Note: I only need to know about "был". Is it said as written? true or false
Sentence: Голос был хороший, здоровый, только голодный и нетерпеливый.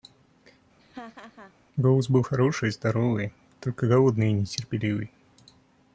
true